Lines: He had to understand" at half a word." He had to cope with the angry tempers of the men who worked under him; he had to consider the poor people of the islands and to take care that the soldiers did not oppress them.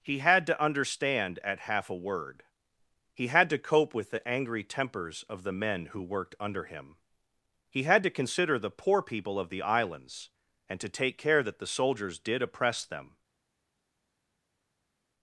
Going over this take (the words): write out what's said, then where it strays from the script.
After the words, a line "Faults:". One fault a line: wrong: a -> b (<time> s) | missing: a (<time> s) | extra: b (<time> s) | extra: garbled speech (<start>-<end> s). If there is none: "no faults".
He had to understand" at half a word." He had to cope with the angry tempers of the men who worked under him; he had to consider the poor people of the islands and to take care that the soldiers did oppress them.
Faults:
missing: not (12.4 s)